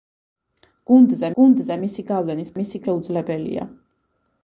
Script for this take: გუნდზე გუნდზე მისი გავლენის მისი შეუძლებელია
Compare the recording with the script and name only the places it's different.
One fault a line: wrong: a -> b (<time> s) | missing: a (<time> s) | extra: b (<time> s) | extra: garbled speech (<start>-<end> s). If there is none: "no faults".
no faults